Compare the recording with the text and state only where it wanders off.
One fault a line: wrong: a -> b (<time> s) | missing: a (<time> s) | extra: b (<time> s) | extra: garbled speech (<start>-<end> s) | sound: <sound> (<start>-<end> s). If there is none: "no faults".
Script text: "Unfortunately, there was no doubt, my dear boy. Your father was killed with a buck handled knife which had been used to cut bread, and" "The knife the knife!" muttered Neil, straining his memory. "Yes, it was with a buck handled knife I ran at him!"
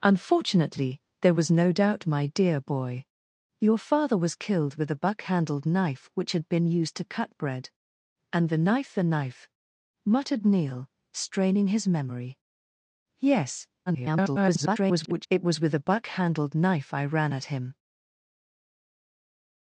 extra: garbled speech (13.9-15.3 s)